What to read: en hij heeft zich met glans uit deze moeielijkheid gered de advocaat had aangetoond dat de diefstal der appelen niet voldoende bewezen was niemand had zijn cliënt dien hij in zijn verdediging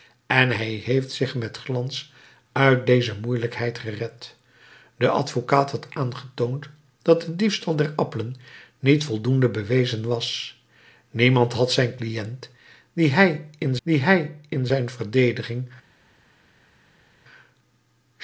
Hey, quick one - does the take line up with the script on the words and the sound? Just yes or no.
no